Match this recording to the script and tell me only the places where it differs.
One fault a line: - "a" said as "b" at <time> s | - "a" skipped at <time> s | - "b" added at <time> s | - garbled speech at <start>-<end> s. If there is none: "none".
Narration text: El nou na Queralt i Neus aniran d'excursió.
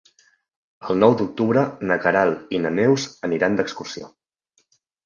- "d'octubre" added at 1.2 s
- "na" added at 2.6 s